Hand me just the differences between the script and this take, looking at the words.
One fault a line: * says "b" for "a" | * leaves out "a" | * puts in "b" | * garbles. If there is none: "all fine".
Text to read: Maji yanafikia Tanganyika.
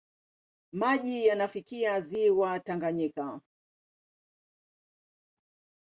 * puts in "ziwa"